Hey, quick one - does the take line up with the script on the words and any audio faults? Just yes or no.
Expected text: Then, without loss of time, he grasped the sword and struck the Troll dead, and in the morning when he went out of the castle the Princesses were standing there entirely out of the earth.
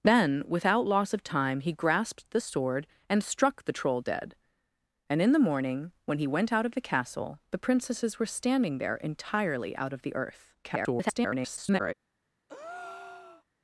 no